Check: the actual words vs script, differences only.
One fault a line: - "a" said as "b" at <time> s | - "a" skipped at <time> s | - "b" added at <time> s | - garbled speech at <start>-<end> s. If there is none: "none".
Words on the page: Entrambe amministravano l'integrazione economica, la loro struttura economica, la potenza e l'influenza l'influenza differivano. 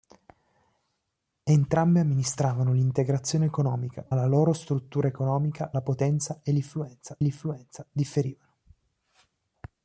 none